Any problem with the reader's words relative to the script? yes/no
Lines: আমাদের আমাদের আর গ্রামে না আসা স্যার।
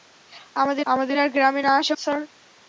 no